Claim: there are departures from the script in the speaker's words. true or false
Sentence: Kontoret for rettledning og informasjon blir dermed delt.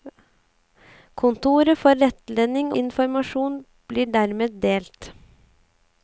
true